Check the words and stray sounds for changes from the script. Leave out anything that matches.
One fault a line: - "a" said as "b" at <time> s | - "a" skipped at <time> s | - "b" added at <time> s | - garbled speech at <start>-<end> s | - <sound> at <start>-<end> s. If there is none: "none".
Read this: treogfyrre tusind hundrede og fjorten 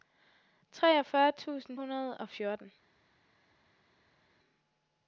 none